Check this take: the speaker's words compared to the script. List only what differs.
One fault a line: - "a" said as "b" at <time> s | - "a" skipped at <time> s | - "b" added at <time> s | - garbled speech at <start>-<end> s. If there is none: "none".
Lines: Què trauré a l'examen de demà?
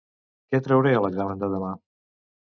none